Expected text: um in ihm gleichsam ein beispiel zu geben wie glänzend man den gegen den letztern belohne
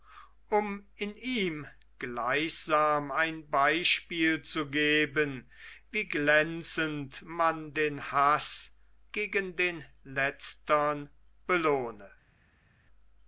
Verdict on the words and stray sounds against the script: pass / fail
fail